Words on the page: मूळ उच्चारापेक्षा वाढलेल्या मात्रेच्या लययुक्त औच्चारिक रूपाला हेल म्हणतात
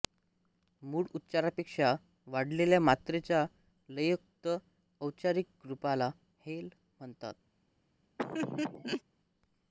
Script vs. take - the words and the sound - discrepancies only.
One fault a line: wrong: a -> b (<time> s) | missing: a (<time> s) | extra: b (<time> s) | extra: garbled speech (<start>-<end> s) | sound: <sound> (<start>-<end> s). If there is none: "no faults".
sound: laugh (8.2-9.0 s)